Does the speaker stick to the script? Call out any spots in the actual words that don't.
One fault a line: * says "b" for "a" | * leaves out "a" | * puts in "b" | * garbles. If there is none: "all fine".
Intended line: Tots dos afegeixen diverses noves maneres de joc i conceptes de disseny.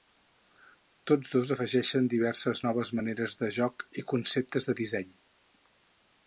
all fine